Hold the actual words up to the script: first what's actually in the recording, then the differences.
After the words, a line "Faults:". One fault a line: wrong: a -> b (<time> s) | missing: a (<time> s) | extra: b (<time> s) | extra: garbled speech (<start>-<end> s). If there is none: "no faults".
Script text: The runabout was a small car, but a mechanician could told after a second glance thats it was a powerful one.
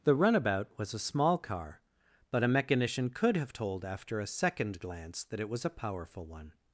The runabout was a small car, but a mechanician could have told after a second glance that it was a powerful one.
Faults:
extra: have (3.4 s)
wrong: thats -> that (5.2 s)